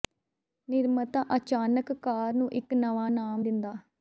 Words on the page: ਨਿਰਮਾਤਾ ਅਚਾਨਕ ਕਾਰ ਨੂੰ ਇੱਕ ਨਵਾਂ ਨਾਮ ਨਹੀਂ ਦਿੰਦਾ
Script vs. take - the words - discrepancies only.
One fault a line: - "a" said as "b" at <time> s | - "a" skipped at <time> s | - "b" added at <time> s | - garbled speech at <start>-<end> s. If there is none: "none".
- "ਨਹੀਂ" skipped at 3.4 s